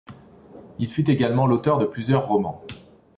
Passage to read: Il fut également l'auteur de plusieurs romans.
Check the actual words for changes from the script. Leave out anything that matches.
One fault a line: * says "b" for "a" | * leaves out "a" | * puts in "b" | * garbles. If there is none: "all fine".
all fine